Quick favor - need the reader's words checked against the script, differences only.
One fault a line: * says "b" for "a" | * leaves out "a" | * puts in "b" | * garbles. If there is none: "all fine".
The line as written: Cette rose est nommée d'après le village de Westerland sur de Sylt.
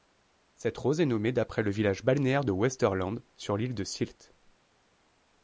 * puts in "balnéaire"
* puts in "l'île"